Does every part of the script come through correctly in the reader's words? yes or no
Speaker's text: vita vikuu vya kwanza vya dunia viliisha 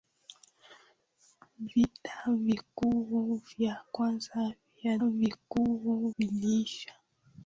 no